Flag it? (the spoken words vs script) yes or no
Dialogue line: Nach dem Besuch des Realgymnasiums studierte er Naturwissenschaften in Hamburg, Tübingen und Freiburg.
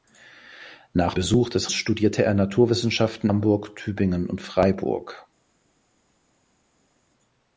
yes